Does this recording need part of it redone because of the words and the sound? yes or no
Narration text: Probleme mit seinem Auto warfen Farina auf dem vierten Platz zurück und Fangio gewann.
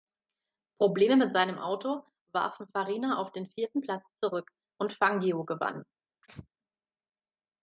yes